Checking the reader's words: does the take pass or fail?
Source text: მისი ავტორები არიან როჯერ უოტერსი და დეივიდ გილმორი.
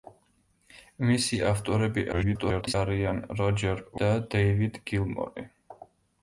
fail